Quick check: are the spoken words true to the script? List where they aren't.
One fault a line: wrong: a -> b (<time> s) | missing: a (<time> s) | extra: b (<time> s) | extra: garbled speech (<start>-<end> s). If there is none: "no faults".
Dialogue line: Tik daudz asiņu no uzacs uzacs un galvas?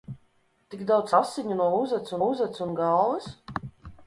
no faults